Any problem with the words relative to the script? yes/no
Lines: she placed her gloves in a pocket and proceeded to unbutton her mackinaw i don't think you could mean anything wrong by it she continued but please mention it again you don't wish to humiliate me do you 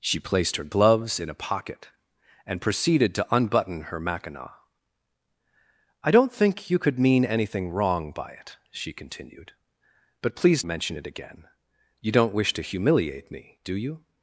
no